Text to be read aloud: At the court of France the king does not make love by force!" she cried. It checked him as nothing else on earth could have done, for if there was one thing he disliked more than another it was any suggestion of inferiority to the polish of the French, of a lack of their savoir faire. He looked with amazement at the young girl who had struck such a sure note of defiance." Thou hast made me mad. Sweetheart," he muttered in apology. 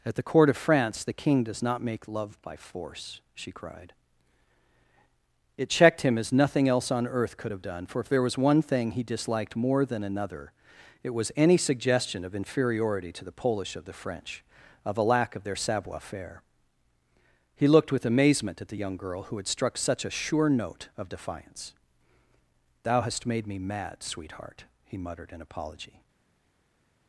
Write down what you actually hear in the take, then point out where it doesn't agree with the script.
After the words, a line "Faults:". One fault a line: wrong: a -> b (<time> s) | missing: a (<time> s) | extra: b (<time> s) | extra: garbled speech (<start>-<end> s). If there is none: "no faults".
At the court of France the king does not make love by force!" she cried. It checked him as nothing else on earth could have done, for if there was one thing he disliked more than another it was any suggestion of inferiority to the polish of the French, of a lack of their savoir faire. He looked with amazement at the young girl who had struck such a sure note of defiance." Thou hast made me mad. Sweetheart," he muttered in apology.
Faults:
no faults